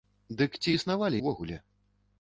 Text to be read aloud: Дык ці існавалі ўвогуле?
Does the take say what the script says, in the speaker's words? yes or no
yes